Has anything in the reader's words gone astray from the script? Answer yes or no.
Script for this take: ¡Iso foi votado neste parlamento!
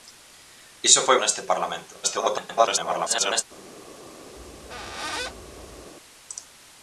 yes